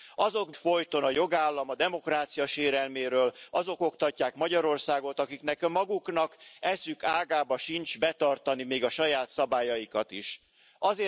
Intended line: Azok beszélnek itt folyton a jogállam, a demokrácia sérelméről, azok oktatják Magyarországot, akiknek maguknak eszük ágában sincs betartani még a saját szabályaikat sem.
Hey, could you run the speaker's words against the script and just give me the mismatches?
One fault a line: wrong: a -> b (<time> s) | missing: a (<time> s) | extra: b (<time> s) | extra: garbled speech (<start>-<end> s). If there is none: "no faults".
missing: beszélnek itt (0.5 s)